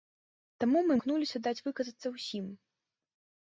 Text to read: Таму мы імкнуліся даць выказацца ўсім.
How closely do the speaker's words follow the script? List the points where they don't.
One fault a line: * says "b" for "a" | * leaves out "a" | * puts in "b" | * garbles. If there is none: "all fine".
all fine